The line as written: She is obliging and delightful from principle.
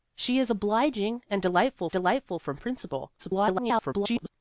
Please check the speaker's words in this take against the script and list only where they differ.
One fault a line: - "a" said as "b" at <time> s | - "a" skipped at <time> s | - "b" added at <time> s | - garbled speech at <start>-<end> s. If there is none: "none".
- "delightful" added at 1.9 s
- garbled speech at 3.2-4.3 s